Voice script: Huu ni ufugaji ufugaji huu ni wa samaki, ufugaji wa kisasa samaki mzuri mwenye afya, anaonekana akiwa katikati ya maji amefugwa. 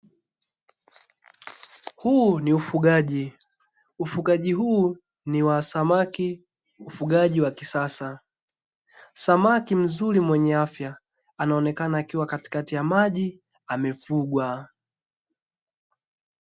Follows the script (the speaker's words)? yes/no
yes